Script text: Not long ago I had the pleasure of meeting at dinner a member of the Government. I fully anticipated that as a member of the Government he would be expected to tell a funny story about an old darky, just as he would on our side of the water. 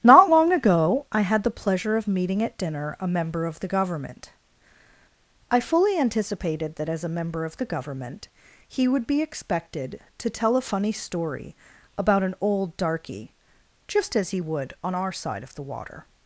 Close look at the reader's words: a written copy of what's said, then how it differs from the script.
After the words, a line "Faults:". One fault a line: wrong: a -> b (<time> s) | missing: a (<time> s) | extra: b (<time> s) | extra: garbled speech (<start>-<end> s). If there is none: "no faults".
Not long ago I had the pleasure of meeting at dinner a member of the Government. I fully anticipated that as a member of the Government he would be expected to tell a funny story about an old darky, just as he would on our side of the water.
Faults:
no faults